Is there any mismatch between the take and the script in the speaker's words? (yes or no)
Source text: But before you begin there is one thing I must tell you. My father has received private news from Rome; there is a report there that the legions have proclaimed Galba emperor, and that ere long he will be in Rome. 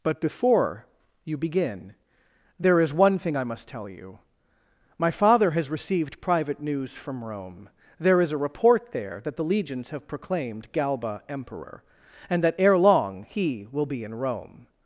no